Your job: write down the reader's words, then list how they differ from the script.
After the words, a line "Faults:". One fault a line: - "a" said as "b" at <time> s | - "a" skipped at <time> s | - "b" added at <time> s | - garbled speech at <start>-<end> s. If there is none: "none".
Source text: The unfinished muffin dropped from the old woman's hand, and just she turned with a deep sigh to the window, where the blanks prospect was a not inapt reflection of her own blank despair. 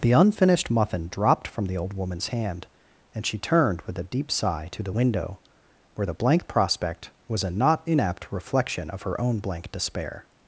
The unfinished muffin dropped from the old woman's hand, and she turned with a deep sigh to the window, where the blank prospect was a not inapt reflection of her own blank despair.
Faults:
- "just" skipped at 3.2 s
- "blanks" said as "blank" at 6.1 s